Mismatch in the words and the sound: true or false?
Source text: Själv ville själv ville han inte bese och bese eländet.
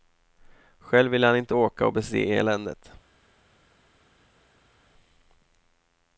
true